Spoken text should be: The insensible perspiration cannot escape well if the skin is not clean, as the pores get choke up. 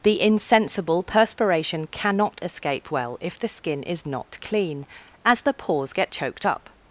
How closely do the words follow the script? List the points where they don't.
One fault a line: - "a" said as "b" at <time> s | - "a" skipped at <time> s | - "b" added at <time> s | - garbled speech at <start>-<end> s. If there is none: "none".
- "choke" said as "choked" at 6.1 s